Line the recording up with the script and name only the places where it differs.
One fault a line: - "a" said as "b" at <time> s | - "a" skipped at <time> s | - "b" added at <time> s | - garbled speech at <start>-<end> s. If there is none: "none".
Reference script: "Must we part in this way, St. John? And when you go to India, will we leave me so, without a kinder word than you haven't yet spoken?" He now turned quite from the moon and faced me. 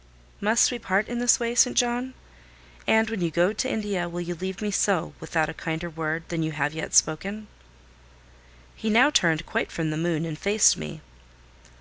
- "we" said as "you" at 4.2 s
- "haven't" said as "have" at 6.5 s